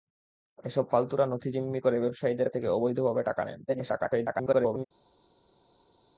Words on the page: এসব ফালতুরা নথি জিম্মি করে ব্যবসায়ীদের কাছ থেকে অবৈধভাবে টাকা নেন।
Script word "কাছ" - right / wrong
wrong